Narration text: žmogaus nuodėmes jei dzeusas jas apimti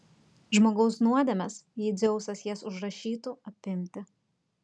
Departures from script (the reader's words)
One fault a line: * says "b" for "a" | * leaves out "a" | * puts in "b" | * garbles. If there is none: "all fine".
* puts in "užrašytų"